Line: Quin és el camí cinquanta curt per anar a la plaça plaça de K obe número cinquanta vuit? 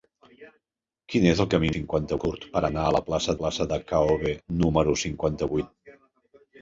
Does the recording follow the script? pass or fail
pass